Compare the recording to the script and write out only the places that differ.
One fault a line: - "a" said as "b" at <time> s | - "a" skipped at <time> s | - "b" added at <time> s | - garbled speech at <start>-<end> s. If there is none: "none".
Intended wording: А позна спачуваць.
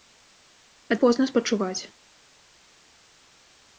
none